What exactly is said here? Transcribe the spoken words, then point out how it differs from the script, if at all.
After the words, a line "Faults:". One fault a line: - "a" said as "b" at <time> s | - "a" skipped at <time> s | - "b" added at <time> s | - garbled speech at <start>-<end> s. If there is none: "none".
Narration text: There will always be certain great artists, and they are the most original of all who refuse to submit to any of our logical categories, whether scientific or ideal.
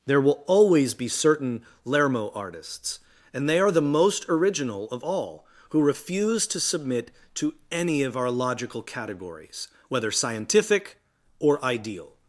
There will always be certain lermo artists, and they are the most original of all who refuse to submit to any of our logical categories, whether scientific or ideal.
Faults:
- "great" said as "lermo" at 1.9 s